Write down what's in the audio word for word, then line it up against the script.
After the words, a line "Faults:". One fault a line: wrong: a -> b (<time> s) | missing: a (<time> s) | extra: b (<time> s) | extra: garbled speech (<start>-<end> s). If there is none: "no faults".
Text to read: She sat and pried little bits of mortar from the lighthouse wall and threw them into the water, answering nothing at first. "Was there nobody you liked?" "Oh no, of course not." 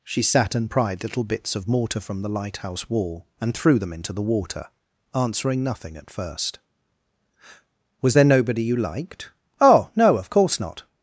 She sat and pried little bits of mortar from the lighthouse wall and threw them into the water, answering nothing at first. "Was there nobody you liked?" "Oh no, of course not."
Faults:
no faults